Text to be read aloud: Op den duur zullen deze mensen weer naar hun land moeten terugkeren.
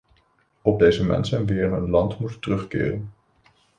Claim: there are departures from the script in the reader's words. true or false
true